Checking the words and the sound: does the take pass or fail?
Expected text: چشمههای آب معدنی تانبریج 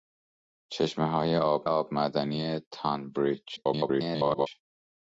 fail